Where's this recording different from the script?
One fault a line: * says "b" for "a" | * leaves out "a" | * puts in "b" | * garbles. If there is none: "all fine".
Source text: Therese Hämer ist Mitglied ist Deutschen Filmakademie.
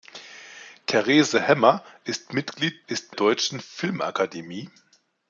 all fine